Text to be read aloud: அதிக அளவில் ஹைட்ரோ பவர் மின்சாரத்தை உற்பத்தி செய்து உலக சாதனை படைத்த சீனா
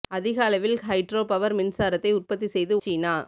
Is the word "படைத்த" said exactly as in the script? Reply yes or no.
no